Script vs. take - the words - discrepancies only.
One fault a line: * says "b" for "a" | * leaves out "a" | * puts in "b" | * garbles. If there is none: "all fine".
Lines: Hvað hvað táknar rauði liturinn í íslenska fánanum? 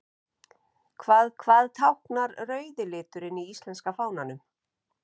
all fine